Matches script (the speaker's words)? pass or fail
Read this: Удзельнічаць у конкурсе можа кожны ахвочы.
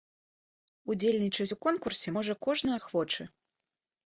pass